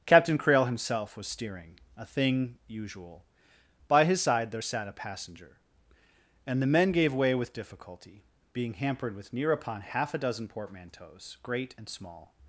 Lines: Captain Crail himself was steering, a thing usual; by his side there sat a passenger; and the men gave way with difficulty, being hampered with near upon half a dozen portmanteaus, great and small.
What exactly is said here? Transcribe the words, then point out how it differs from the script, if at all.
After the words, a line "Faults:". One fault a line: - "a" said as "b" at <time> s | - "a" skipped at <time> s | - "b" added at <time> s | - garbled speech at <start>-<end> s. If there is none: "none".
Captain Crail himself was steering, a thing usual; by his side there sat a passenger; and the men gave way with difficulty, being hampered with near upon half a dozen portmanteaus, great and small.
Faults:
none